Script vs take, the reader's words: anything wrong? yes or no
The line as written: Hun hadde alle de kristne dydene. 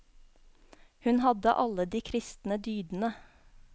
no